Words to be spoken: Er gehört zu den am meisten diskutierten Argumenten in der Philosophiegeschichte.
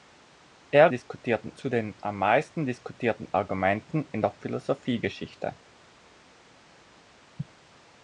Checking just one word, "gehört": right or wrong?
wrong